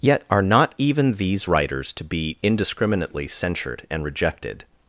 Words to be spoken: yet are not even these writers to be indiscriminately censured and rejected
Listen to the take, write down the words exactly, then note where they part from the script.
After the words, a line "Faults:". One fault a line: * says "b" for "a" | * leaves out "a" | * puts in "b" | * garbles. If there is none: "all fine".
yet are not even these writers to be indiscriminately censured and rejected
Faults:
all fine